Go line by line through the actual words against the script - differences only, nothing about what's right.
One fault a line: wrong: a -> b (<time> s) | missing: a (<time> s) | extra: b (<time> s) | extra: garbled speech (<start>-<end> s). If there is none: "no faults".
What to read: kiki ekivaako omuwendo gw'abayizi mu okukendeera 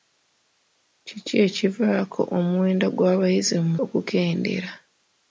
no faults